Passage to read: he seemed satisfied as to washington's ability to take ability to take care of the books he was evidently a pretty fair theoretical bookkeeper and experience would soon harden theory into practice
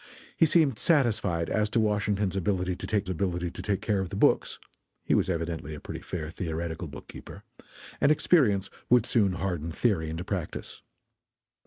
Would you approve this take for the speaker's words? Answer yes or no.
yes